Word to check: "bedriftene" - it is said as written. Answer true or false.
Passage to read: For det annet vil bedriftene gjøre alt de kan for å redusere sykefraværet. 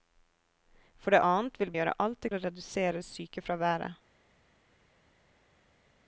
false